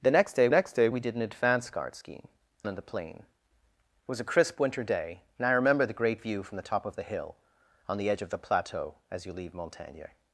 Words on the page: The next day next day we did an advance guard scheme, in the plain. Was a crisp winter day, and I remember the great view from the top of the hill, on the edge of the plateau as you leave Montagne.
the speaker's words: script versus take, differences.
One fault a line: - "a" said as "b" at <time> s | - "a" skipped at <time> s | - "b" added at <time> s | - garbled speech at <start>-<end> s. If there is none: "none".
none